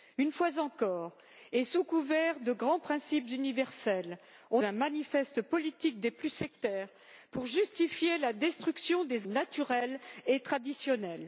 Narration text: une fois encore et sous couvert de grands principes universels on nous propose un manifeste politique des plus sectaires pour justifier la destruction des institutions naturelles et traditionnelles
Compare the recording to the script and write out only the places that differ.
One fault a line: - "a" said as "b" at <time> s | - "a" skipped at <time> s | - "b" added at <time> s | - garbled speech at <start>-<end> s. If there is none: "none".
- "nous propose" skipped at 4.6 s
- "institutions" skipped at 9.3 s